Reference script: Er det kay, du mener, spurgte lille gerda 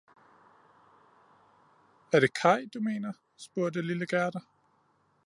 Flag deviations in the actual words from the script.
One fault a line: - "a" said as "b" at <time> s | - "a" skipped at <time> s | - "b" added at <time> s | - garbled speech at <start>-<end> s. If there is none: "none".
none